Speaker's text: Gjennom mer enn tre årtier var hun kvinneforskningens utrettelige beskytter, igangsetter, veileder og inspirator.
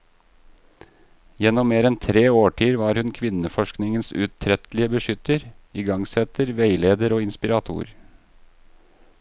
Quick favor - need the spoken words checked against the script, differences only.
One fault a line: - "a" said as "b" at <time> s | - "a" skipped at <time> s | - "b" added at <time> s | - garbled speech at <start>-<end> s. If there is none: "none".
none